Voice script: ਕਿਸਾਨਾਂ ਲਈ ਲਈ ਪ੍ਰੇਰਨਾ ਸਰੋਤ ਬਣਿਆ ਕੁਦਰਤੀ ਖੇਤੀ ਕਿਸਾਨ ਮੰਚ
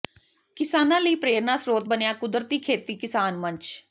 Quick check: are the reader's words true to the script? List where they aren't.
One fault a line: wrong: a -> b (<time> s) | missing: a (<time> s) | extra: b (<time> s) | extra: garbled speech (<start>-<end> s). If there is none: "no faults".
missing: ਲਈ (1.1 s)